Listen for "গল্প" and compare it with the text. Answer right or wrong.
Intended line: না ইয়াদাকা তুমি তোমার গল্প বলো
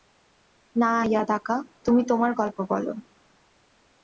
right